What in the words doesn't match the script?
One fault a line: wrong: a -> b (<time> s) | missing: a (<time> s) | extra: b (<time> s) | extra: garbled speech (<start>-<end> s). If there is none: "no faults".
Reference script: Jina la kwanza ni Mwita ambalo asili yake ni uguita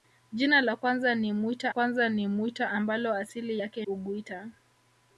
extra: kwanza ni Mwita (1.7 s)
missing: ni (3.9 s)